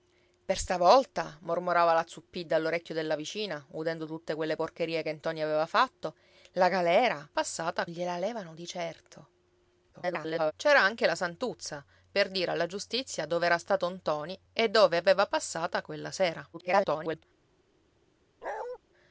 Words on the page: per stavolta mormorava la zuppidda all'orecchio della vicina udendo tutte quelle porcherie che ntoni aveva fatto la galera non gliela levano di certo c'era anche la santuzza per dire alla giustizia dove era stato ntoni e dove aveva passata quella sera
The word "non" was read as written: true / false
false